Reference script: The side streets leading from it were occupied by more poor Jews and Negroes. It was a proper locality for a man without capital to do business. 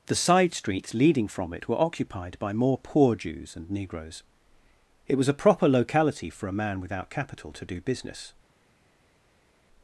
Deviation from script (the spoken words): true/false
false